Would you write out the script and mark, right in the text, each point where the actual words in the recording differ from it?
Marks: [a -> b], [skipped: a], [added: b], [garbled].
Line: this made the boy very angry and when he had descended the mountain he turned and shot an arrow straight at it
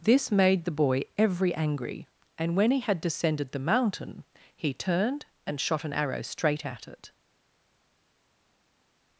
this made the boy [very -> every] angry and when he had descended the mountain he turned and shot an arrow straight at it